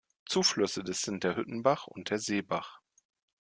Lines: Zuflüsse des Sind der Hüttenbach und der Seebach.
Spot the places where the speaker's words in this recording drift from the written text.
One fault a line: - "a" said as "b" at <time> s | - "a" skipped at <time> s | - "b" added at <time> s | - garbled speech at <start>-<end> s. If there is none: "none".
none